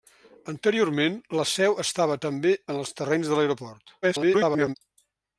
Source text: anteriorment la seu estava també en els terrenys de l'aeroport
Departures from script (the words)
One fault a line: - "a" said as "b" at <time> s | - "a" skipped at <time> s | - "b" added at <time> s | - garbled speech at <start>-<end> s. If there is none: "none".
- garbled speech at 4.0-4.8 s